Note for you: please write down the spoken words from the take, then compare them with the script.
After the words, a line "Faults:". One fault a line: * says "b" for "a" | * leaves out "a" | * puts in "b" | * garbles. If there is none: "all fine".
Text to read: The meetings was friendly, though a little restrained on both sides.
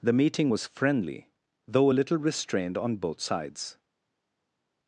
The meeting was friendly, though a little restrained on both sides.
Faults:
* says "meeting" for "meetings"